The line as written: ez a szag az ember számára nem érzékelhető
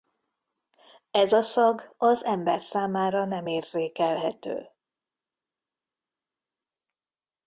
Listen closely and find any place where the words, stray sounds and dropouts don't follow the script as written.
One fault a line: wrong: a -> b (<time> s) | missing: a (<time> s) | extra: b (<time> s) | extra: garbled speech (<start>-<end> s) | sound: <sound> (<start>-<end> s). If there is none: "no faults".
no faults